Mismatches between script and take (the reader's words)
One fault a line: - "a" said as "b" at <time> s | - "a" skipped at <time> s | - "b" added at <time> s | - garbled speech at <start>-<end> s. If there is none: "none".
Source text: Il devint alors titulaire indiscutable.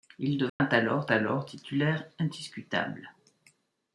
- "alors" added at 1.1 s